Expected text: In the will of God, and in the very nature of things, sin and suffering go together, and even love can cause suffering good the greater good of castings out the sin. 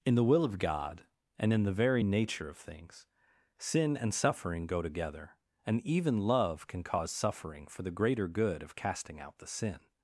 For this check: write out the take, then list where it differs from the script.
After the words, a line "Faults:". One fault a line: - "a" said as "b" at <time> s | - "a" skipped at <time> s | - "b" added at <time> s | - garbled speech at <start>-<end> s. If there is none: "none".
In the will of God, and in the very nature of things, sin and suffering go together, and even love can cause suffering for the greater good of casting out the sin.
Faults:
- "good" said as "for" at 7.7 s
- "castings" said as "casting" at 8.8 s